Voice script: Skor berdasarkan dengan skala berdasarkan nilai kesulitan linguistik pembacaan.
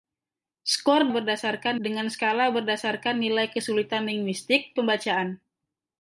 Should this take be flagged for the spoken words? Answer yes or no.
no